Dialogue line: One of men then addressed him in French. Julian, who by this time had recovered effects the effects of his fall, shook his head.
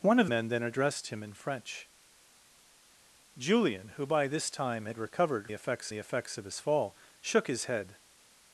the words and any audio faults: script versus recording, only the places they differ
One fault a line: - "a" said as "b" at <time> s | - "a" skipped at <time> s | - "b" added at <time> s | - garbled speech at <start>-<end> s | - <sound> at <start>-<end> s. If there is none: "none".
none